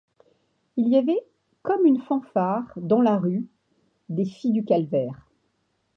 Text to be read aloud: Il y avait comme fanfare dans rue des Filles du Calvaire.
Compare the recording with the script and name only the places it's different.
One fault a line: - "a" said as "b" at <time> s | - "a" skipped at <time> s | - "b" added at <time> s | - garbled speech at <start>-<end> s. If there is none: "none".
- "une" added at 1.9 s
- "la" added at 3.0 s